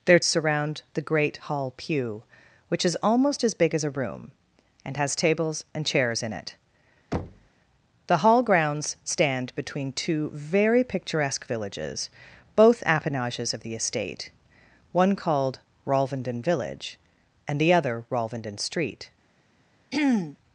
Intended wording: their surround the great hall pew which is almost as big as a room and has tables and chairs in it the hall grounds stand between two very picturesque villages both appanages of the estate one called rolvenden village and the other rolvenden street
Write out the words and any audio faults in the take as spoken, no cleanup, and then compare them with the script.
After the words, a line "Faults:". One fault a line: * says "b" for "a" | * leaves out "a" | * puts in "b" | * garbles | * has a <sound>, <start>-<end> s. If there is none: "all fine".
their surround the great hall pew which is almost as big as a room and has tables and chairs in it the hall grounds stand between two very picturesque villages both appanages of the estate one called rolvenden village and the other rolvenden street
Faults:
* has a thud, 7.1-7.5 s
* has a throat clearing, 19.9-20.4 s